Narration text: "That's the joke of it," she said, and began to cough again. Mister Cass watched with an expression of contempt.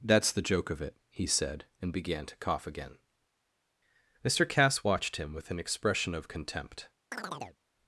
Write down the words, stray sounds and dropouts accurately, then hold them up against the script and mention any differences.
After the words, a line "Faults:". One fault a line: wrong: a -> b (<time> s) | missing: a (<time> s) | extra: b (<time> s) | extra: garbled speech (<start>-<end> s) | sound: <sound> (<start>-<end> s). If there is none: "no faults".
"That's the joke of it," he said, and began to cough again. Mister Cass watched him with an expression of contempt.
Faults:
wrong: she -> he (1.1 s)
extra: him (5.2 s)
sound: chirp (7.1-7.6 s)